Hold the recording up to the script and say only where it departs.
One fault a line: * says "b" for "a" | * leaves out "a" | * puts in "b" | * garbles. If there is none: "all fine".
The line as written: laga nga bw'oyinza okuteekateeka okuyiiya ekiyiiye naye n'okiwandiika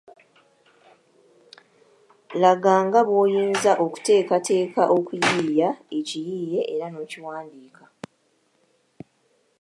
* says "era" for "naye"